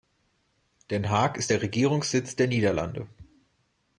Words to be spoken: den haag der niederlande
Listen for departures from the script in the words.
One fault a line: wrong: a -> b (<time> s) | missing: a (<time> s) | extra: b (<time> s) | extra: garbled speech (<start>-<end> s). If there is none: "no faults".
extra: ist der regierungssitz (1.4 s)